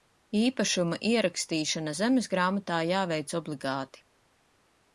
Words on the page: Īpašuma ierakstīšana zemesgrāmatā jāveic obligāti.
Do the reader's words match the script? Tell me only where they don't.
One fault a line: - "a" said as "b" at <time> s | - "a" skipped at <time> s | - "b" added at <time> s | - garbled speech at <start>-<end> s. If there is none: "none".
none